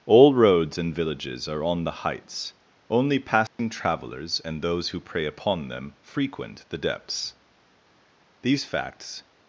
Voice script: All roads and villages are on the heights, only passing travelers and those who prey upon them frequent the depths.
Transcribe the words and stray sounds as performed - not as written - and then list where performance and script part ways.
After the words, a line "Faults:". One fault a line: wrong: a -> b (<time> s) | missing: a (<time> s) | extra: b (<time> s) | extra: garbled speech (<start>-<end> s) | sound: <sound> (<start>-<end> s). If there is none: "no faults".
All roads and villages are on the heights, only passing travelers and those who prey upon them frequent the depths. These facts
Faults:
sound: dropout (3.5-3.6 s)
extra: These facts (8.4 s)